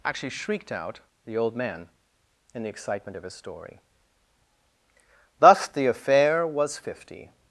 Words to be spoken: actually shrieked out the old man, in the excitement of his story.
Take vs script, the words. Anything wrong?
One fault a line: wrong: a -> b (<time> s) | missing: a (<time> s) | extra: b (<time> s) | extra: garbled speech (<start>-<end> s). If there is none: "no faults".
extra: Thus the affair was fifty (5.4 s)